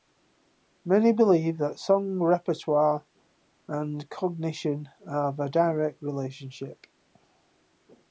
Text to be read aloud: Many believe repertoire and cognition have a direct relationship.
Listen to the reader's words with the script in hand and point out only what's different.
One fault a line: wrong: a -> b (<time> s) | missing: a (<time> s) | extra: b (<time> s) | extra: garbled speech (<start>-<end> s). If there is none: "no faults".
extra: that song (1.6 s)